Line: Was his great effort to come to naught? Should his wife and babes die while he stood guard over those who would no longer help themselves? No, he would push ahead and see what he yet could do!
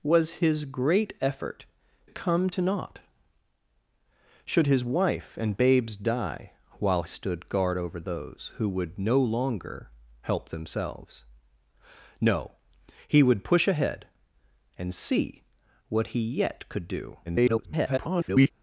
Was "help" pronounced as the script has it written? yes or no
yes